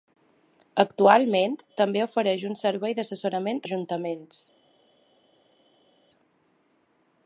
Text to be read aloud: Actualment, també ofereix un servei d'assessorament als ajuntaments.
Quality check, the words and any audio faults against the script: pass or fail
fail